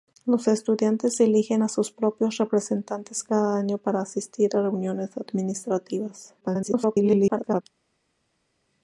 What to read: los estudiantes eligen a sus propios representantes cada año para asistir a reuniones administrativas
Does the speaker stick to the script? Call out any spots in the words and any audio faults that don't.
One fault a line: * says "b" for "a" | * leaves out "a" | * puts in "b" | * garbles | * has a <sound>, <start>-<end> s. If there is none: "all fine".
* garbles